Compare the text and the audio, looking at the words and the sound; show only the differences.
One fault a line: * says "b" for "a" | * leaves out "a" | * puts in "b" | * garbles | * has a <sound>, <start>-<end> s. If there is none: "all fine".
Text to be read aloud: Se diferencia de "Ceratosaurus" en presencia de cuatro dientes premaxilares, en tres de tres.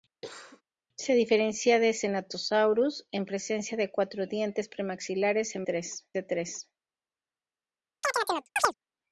* has a cough, 0.2-0.6 s
* has a chirp, 8.0-8.7 s